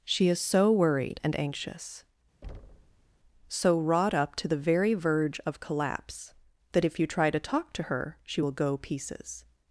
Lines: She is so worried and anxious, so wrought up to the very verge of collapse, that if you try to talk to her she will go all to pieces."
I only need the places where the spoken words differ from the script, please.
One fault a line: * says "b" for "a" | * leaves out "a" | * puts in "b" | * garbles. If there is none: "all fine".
* leaves out "all to"